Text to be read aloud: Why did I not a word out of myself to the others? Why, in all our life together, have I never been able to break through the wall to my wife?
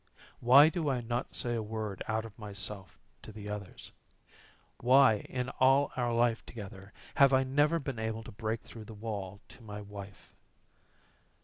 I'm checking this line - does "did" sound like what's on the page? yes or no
no